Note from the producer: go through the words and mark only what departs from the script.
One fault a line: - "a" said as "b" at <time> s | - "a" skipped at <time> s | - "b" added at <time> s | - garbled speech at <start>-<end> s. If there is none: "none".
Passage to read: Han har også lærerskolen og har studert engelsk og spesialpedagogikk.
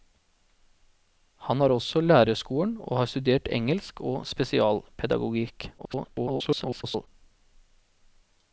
- garbled speech at 5.8-7.1 s